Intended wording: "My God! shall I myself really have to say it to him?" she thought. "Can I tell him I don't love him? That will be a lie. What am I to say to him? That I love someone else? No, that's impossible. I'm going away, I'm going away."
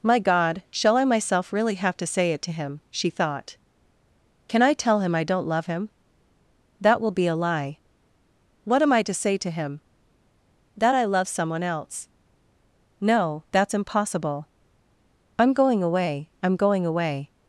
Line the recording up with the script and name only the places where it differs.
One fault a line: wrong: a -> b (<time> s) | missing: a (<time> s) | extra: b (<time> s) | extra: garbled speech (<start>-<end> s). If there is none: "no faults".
no faults